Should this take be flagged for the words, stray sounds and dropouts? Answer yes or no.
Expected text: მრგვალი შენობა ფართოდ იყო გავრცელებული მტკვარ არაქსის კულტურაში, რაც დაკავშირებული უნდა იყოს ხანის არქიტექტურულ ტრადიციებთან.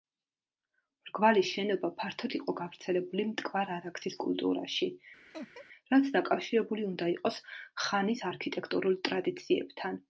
yes